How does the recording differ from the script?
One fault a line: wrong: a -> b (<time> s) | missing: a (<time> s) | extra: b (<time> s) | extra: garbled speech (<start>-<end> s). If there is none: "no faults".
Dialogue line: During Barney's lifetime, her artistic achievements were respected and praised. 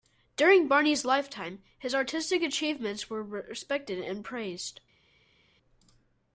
wrong: her -> his (1.8 s)